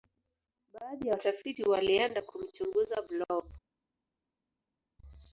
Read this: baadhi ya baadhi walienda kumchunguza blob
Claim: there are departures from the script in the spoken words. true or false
true